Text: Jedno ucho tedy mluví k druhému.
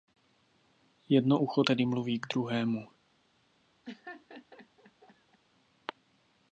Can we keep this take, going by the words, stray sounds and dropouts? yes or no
no